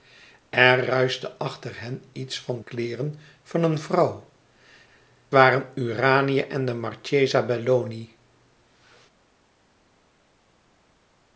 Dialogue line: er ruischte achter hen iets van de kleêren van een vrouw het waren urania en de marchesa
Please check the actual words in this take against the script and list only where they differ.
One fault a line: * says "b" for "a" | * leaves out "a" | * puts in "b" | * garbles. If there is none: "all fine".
* leaves out "de"
* leaves out "het"